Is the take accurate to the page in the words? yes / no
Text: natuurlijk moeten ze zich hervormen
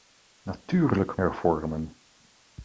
no